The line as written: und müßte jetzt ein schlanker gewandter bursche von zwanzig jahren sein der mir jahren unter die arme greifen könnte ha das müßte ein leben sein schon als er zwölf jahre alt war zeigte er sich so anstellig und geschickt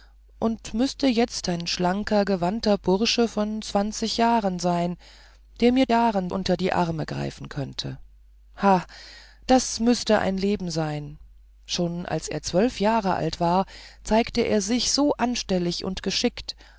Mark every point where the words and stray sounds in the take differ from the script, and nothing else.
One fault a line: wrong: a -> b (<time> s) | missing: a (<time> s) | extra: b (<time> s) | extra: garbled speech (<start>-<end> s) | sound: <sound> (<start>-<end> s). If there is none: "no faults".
no faults